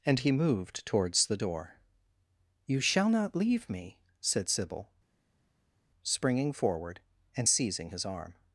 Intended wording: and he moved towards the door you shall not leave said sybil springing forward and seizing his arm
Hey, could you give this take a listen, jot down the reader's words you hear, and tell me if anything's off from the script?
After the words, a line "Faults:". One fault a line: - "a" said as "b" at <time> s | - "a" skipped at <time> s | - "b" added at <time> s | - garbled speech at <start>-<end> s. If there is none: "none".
and he moved towards the door you shall not leave me said sybil springing forward and seizing his arm
Faults:
- "me" added at 3.7 s